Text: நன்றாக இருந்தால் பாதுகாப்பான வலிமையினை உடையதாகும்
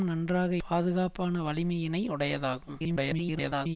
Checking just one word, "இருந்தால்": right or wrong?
wrong